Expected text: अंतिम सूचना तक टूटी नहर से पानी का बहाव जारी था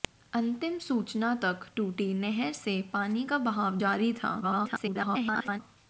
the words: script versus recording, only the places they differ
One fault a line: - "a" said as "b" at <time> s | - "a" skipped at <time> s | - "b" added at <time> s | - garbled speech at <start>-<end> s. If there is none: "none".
- garbled speech at 4.4-5.6 s